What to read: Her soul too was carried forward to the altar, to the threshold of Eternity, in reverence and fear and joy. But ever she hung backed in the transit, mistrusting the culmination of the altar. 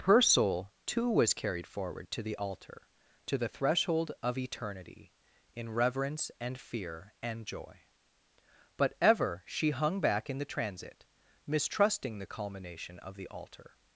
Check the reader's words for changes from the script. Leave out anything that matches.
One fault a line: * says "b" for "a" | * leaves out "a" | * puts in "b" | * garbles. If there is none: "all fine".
* says "back" for "backed"